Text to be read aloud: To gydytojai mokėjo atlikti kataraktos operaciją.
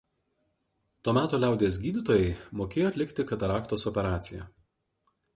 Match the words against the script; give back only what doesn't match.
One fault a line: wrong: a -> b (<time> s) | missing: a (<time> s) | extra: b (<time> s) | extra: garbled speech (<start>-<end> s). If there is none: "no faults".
extra: meto liaudies (1.2 s)